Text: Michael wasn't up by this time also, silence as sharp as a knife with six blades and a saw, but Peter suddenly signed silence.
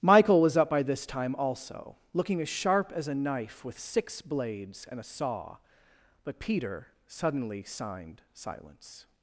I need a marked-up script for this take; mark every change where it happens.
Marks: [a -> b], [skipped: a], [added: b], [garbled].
Michael [wasn't -> was] up by this time also, [silence -> looking] as sharp as a knife with six blades and a saw, but Peter suddenly signed silence.